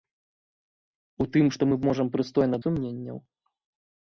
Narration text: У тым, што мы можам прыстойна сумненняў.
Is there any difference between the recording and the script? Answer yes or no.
no